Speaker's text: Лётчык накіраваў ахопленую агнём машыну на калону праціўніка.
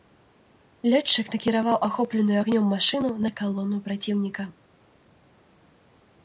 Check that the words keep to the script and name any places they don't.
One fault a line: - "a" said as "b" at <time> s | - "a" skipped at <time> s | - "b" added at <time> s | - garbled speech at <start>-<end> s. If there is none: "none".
none